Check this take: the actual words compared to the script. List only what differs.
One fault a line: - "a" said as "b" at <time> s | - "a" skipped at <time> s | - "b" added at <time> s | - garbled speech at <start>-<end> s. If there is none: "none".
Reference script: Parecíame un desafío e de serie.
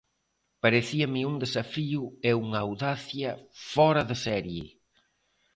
- "unha audacia fóra" added at 2.4 s